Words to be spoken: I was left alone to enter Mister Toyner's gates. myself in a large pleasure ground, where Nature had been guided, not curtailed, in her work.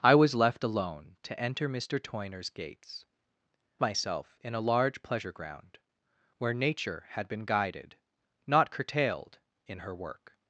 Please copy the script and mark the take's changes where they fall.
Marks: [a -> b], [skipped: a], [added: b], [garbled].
I was left alone to enter Mister Toyner's gates. myself in a large pleasure ground, where Nature had been guided, not curtailed, in her work.